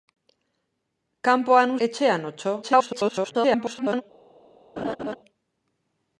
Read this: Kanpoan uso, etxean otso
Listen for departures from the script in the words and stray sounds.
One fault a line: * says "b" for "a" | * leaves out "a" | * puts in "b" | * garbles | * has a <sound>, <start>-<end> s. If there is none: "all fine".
* leaves out "uso"
* garbles
* has a laugh, 4.8-5.2 s